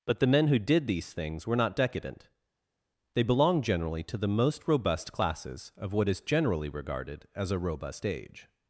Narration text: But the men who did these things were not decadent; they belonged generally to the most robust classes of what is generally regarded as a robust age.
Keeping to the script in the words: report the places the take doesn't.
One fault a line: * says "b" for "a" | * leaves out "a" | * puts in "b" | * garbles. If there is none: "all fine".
all fine